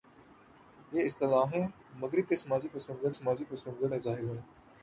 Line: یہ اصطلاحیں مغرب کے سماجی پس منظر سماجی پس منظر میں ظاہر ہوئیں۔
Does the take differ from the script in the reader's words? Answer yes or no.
no